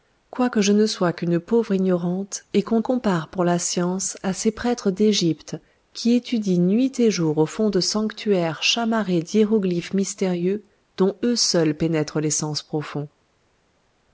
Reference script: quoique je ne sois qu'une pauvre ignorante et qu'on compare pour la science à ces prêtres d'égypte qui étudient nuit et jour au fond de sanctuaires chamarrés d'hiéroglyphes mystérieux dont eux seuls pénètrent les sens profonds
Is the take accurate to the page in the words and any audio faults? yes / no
yes